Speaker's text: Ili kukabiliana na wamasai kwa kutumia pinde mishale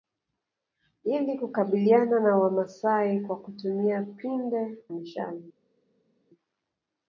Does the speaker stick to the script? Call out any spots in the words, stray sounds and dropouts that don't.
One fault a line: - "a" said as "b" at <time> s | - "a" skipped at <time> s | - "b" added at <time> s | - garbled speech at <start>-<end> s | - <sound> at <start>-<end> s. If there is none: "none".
none